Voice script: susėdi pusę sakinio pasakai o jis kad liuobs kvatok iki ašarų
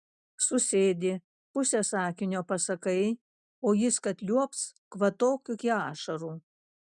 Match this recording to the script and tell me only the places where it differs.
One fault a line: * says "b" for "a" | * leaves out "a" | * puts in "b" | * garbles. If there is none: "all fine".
all fine